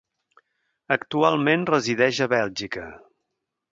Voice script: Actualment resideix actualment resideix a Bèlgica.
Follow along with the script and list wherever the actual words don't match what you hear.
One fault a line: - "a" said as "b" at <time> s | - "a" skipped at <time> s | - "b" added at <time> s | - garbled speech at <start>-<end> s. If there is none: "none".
- "actualment resideix" skipped at 2.2 s